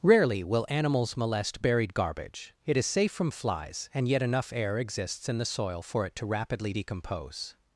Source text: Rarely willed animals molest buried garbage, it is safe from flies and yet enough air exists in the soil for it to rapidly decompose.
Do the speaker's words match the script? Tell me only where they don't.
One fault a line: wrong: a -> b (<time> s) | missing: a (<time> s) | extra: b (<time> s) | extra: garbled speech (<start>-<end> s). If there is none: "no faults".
wrong: willed -> will (0.4 s)